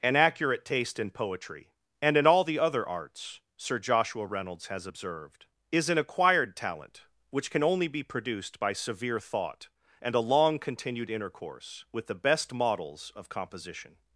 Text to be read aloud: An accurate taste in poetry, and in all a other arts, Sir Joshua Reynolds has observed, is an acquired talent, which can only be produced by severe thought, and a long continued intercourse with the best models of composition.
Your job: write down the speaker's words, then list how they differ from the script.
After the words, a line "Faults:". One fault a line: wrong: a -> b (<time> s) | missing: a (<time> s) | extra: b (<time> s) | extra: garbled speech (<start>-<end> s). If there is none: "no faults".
An accurate taste in poetry, and in all the other arts, Sir Joshua Reynolds has observed, is an acquired talent, which can only be produced by severe thought, and a long continued intercourse with the best models of composition.
Faults:
wrong: a -> the (2.4 s)